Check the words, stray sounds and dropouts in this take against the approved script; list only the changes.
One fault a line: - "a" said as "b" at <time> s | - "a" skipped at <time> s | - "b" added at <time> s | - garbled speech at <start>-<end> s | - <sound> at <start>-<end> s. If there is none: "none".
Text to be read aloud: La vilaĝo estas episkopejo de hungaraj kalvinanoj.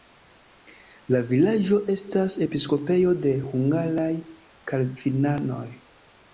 none